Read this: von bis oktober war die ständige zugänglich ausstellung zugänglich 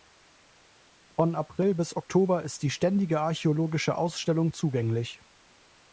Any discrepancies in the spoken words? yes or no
yes